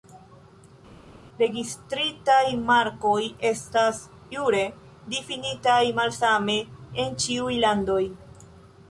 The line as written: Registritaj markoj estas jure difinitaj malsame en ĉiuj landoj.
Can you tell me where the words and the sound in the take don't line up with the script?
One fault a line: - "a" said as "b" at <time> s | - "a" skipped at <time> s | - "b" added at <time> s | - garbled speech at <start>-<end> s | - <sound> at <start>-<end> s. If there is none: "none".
none